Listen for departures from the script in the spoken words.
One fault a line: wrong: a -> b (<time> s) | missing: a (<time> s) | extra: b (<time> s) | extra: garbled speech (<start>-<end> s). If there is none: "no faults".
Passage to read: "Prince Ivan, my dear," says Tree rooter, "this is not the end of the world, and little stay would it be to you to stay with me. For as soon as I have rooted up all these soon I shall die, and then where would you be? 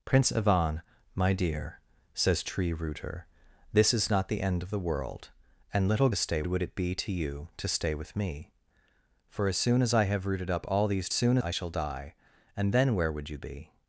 no faults